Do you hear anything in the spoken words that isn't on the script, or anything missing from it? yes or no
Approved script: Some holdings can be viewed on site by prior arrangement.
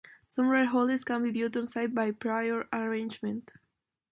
yes